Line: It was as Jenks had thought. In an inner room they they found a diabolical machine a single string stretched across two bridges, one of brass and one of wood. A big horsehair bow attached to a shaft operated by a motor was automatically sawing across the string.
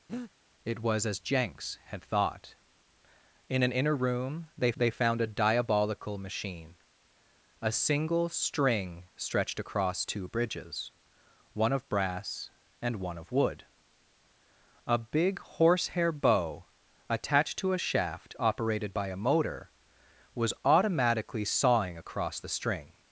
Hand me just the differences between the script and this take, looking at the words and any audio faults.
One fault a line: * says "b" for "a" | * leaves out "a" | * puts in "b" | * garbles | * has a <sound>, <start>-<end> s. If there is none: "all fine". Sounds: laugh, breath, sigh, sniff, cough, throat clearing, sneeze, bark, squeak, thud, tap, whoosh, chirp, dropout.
* has a breath, 0.1-0.3 s